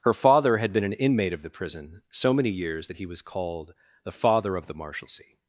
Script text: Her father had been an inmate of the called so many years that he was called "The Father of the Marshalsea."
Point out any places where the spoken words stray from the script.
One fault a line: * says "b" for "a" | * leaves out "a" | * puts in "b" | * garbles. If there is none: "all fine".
* says "prison" for "called"